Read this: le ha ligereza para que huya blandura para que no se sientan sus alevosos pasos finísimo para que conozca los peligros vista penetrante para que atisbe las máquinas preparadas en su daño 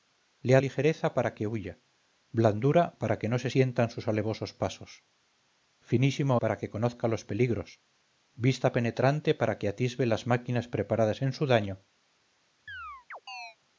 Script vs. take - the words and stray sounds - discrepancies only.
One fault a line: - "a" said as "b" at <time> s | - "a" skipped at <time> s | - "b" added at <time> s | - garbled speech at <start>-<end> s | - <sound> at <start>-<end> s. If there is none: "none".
- chirp at 12.7-13.6 s